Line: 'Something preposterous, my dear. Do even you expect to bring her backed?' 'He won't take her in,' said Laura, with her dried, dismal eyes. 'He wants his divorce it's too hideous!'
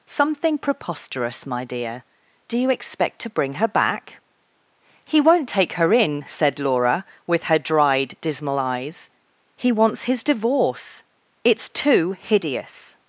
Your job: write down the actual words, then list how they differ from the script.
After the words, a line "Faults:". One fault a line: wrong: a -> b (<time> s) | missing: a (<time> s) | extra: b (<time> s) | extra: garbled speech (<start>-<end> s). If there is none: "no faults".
'Something preposterous, my dear. Do you expect to bring her back?' 'He won't take her in,' said Laura, with her dried, dismal eyes. 'He wants his divorce it's too hideous!'
Faults:
missing: even (2.6 s)
wrong: backed -> back (3.7 s)